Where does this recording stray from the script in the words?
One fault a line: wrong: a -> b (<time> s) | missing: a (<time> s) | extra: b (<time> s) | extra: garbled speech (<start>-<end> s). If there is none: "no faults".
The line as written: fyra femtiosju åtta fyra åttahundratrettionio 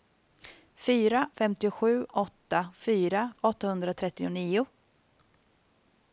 no faults